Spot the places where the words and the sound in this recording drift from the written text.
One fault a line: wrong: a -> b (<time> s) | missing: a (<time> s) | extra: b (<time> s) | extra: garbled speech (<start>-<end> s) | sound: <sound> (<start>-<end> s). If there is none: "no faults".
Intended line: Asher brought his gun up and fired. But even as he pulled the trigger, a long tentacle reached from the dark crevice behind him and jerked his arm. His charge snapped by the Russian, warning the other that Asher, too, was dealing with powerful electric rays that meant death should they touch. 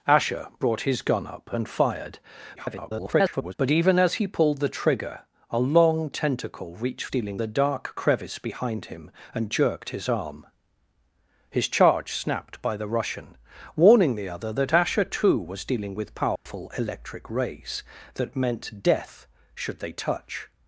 extra: garbled speech (2.6-3.5 s)
wrong: from -> dealing (7.1 s)
sound: dropout (16.4-16.5 s)